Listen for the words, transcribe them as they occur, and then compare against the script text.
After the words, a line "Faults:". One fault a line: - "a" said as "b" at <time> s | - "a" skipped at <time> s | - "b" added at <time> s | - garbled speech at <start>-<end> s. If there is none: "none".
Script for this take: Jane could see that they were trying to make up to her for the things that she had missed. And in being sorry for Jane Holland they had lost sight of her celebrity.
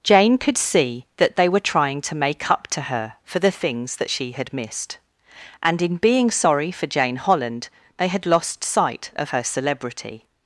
Jane could see that they were trying to make up to her for the things that she had missed. And in being sorry for Jane Holland they had lost sight of her celebrity.
Faults:
none